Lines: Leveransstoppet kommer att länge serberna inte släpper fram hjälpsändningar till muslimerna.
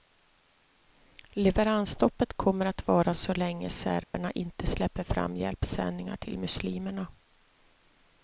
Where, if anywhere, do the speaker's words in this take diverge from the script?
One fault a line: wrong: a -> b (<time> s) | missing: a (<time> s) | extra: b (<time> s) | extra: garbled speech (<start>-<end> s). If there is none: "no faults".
extra: vara så (2.9 s)